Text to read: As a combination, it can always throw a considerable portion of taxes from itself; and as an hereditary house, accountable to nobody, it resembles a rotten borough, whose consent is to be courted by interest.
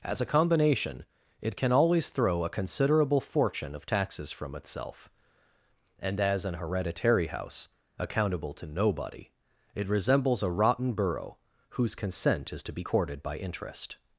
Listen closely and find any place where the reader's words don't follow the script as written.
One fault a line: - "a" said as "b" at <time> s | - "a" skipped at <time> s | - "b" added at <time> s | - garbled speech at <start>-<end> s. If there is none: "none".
- "portion" said as "fortune" at 3.2 s